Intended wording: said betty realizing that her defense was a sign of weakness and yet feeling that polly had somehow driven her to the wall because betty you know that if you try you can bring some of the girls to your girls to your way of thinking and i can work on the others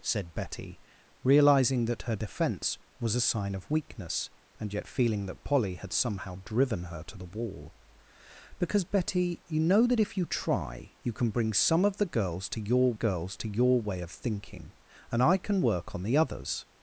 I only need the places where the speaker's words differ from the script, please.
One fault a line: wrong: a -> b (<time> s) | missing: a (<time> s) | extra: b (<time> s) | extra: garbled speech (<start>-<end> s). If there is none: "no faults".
no faults